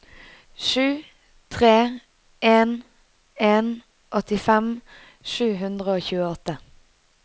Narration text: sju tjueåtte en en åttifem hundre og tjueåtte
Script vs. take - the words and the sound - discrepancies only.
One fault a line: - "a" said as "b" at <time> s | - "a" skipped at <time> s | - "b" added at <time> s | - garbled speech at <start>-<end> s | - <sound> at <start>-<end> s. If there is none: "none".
- "tjueåtte" said as "tre" at 1.5 s
- "sju" added at 5.3 s